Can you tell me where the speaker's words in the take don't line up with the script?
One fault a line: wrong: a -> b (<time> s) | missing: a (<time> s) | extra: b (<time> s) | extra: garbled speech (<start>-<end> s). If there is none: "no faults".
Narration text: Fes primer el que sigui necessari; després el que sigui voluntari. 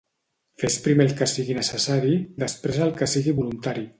no faults